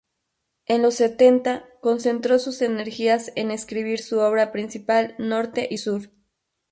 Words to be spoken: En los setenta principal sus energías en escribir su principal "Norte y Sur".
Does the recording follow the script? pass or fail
fail